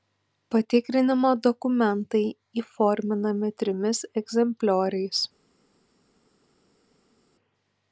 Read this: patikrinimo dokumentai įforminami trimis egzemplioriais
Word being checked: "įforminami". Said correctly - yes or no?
yes